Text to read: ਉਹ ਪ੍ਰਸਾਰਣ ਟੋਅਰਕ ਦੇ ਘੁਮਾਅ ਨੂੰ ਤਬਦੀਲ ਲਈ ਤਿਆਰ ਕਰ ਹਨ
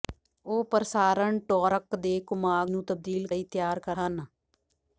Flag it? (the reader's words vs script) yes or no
no